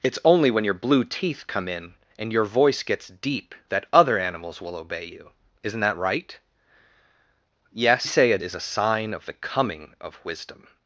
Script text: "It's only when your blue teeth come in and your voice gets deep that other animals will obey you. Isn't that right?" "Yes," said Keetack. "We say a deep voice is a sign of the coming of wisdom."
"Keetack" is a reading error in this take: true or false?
true